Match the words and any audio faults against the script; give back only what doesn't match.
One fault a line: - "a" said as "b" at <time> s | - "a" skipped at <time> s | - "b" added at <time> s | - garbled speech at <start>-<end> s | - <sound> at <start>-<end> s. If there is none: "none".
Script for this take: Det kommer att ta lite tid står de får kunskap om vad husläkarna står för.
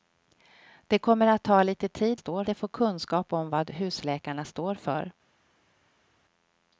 none